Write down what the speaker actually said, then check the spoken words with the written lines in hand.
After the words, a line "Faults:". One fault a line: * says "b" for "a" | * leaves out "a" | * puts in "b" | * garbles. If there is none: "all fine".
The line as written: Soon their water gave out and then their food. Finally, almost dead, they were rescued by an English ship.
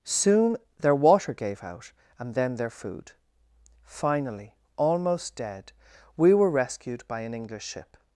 Soon their water gave out and then their food. Finally, almost dead, we were rescued by an English ship.
Faults:
* says "we" for "they"